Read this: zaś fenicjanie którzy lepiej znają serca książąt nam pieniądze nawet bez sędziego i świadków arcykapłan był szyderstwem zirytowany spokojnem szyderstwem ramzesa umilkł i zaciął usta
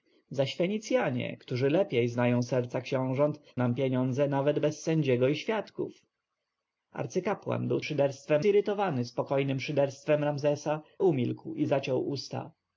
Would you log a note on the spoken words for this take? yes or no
no